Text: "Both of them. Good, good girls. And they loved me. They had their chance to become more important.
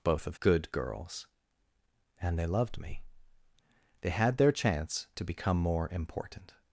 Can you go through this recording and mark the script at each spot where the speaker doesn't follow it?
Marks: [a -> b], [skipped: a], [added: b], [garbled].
"Both of [skipped: them. Good,] good girls. And they loved me. They had their chance to become more important.